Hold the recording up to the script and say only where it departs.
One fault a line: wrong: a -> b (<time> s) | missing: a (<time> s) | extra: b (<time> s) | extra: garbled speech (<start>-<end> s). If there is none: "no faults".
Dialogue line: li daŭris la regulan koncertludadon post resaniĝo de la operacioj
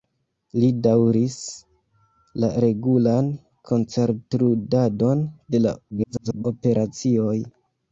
missing: post resaniĝo (5.2 s)
extra: garbled speech (5.9-6.4 s)